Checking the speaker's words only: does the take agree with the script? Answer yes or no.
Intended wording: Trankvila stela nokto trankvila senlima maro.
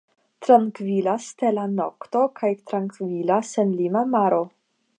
no